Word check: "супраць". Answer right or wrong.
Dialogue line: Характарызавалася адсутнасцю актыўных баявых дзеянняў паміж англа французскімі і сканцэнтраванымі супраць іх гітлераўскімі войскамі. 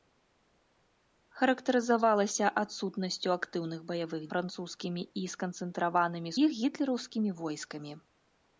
wrong